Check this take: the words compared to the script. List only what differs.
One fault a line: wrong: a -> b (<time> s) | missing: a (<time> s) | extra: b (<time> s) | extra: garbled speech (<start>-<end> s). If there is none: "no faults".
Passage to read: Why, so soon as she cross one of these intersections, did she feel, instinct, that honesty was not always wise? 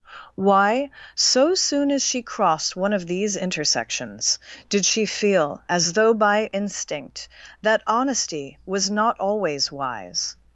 wrong: cross -> crossed (2.2 s)
extra: as though by (5.7 s)